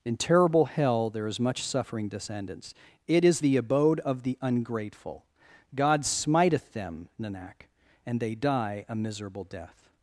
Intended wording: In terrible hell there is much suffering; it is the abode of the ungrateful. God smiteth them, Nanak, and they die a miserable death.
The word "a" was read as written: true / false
true